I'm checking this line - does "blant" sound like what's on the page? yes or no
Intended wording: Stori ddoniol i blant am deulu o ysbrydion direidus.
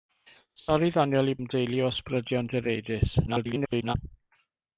no